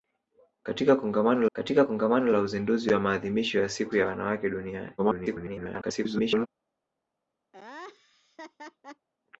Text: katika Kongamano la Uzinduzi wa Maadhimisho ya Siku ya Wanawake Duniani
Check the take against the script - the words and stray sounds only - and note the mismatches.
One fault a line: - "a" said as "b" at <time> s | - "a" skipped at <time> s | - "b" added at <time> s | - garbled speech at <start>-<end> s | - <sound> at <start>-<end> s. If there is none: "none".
- "katika Kongamano" added at 1.5 s
- garbled speech at 5.0-6.5 s
- laugh at 7.5-9.1 s